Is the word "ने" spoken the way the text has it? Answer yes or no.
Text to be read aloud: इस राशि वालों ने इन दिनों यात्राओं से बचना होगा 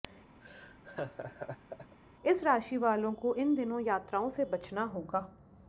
no